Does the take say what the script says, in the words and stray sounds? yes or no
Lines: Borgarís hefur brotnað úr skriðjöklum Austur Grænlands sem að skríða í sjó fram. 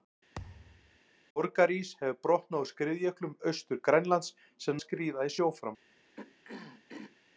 no